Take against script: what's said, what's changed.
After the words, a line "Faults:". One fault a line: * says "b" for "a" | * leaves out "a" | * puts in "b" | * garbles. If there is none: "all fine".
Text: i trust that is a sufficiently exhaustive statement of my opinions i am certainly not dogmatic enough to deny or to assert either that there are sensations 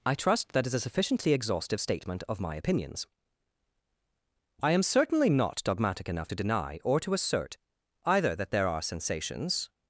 i trust that is a sufficiently exhaustive statement of my opinions i am certainly not dogmatic enough to deny or to assert either that there are sensations
Faults:
all fine